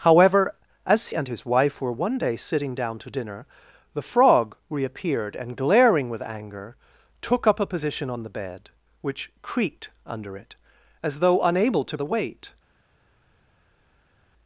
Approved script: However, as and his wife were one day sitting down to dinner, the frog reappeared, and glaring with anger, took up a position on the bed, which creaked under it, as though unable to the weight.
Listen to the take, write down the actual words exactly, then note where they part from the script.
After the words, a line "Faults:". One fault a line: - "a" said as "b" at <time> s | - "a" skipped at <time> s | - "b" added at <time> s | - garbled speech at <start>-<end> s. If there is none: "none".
However, as and his wife were one day sitting down to dinner, the frog reappeared, and glaring with anger, took up a position on the bed, which creaked under it, as though unable to the weight.
Faults:
none